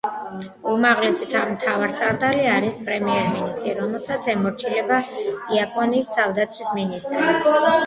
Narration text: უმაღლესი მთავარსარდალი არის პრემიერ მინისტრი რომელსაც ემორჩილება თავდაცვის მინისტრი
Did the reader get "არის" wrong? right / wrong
right